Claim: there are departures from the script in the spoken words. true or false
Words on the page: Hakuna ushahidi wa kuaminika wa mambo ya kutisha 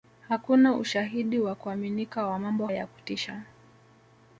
false